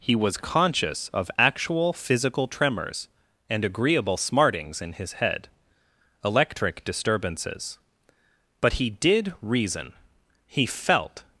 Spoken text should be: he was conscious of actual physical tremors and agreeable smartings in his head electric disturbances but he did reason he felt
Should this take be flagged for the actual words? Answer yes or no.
no